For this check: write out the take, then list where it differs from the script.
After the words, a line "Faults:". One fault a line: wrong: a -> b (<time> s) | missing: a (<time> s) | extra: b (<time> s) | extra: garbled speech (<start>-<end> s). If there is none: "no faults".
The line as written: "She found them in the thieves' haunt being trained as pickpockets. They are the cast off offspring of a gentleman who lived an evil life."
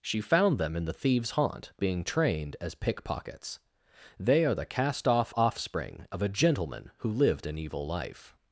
"She found them in the thieves' haunt being trained as pickpockets. They are the cast off offspring of a gentleman who lived an evil life."
Faults:
no faults